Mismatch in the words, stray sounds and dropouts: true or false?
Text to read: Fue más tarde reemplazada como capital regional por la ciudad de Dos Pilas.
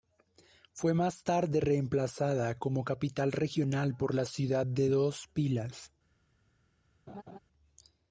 true